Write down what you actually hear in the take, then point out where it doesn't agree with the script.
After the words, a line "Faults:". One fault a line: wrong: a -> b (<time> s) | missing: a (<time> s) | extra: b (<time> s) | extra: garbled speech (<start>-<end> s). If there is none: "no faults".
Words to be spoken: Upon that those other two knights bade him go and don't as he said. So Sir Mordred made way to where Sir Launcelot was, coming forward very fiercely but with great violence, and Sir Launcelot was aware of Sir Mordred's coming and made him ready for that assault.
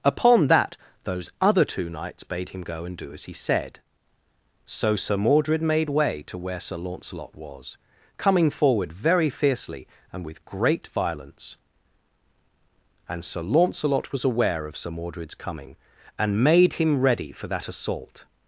Upon that those other two knights bade him go and do as he said. So Sir Mordred made way to where Sir Launcelot was, coming forward very fiercely and with great violence, and Sir Launcelot was aware of Sir Mordred's coming and made him ready for that assault.
Faults:
wrong: don't -> do (3.0 s)
wrong: but -> and (10.1 s)